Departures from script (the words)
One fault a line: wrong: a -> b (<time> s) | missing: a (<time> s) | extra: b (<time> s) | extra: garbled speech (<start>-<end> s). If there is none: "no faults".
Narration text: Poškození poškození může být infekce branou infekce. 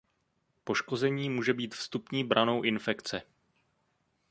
missing: poškození (1.3 s)
wrong: infekce -> vstupní (1.8 s)